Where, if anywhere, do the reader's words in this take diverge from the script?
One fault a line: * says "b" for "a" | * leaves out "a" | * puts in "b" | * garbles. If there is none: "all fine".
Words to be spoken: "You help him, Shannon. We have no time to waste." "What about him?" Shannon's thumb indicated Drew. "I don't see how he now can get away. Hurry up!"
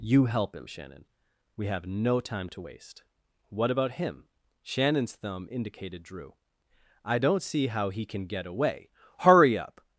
* leaves out "now"